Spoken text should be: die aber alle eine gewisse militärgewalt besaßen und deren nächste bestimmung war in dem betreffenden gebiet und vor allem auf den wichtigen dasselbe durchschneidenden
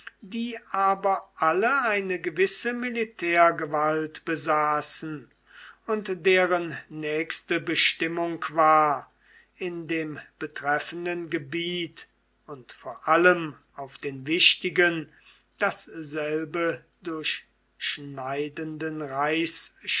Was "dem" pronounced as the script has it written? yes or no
yes